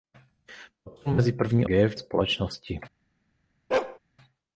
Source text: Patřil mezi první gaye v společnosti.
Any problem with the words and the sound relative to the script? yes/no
yes